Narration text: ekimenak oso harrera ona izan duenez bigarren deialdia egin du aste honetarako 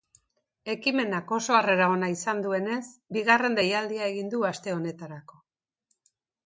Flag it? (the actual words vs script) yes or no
no